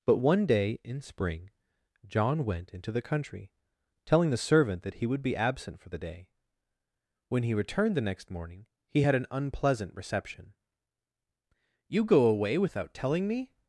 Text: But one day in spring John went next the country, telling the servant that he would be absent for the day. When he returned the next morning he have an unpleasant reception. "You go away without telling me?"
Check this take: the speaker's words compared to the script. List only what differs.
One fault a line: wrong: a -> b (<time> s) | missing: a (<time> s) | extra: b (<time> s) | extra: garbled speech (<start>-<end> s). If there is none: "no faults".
wrong: next -> into (2.7 s)
wrong: have -> had (9.0 s)